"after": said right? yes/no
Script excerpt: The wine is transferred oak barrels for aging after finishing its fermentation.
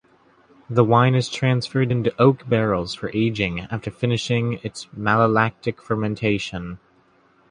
yes